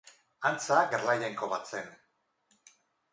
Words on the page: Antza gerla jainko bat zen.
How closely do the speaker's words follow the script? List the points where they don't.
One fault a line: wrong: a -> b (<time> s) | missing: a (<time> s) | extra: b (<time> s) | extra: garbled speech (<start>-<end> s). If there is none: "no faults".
no faults